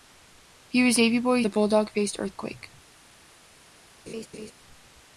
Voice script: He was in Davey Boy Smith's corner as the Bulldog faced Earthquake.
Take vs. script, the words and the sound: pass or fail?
fail